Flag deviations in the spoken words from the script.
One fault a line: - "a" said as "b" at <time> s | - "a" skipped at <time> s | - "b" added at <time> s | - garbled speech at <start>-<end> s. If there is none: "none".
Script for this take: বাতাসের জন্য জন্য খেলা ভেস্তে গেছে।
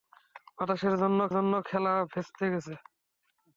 none